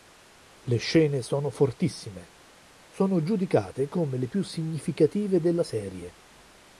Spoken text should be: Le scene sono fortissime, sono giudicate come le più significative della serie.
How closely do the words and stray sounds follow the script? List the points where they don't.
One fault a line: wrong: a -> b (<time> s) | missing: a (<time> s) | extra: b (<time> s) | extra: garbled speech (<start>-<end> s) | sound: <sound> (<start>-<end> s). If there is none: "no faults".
no faults